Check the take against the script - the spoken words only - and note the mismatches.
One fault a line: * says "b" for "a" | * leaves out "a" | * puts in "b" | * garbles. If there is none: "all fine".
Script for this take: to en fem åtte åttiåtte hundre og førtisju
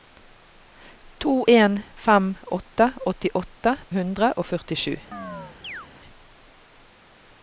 all fine